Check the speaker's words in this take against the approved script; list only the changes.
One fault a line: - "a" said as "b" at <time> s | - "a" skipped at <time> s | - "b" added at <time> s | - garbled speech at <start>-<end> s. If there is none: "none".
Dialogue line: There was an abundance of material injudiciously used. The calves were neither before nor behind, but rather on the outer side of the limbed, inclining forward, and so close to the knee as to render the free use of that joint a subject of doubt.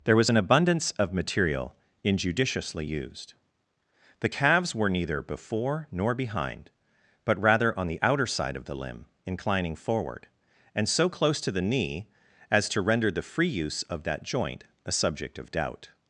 - "limbed" said as "limb" at 8.8 s